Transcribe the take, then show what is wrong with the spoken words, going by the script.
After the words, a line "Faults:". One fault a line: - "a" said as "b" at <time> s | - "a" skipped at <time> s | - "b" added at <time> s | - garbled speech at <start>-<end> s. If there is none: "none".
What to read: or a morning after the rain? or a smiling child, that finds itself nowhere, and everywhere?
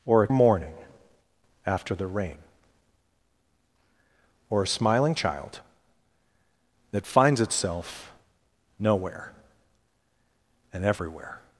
or a morning after the rain? or a smiling child, that finds itself nowhere, and everywhere?
Faults:
none